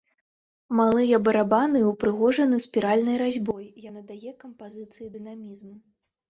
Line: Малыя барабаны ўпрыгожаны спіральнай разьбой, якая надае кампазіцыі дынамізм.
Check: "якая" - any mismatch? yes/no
yes